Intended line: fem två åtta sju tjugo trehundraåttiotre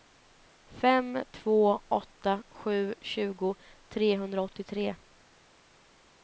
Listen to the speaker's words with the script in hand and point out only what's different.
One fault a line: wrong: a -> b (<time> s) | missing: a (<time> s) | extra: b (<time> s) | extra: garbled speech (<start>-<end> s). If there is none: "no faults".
no faults